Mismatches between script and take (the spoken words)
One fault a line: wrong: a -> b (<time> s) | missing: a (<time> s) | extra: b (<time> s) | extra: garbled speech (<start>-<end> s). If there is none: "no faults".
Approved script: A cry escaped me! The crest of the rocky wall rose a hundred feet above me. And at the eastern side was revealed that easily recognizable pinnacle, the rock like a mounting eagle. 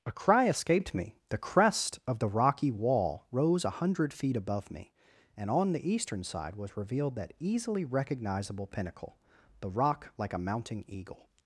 wrong: at -> on (5.5 s)